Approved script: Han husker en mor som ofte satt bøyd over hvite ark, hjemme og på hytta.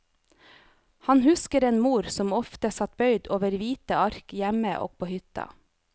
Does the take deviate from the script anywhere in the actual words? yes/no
no